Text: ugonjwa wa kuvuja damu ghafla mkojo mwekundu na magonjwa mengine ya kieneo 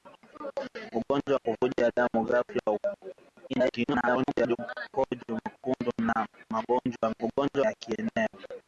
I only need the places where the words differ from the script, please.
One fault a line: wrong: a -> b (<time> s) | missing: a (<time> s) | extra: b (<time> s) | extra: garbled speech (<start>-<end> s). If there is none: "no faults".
extra: garbled speech (3.5-4.6 s)
wrong: mengine -> ugonjwa (7.2 s)